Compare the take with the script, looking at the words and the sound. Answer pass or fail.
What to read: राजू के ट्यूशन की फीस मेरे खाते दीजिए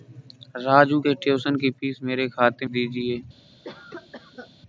fail